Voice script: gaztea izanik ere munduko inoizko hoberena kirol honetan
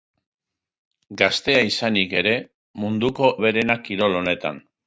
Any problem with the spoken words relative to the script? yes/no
yes